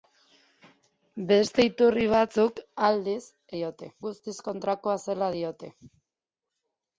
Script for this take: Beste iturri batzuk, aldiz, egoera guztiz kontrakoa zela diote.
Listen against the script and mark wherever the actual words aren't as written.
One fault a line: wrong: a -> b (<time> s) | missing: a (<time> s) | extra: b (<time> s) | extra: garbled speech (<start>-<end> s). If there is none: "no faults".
wrong: egoera -> diote (3.6 s)